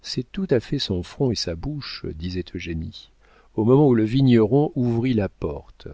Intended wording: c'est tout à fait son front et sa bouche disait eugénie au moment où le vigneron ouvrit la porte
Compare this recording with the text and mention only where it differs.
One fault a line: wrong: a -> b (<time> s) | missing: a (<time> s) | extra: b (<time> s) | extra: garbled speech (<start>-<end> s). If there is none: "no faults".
no faults